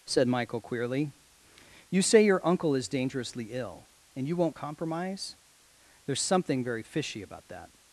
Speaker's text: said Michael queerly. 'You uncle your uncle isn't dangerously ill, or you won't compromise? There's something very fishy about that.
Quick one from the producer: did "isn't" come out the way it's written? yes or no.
no